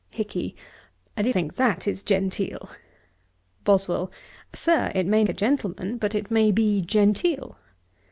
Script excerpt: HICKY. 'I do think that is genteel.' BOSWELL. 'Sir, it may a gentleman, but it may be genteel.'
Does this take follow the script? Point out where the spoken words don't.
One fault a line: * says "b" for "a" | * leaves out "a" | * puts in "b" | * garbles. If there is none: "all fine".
all fine